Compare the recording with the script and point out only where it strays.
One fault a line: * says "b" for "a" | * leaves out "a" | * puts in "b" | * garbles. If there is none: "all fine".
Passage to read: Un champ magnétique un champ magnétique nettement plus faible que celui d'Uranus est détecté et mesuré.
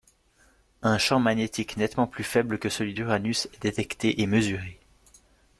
* leaves out "un champ magnétique"